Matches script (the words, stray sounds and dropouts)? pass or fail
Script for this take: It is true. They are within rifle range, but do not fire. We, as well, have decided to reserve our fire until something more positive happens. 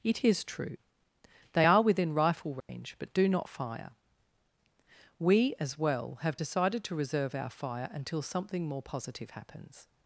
fail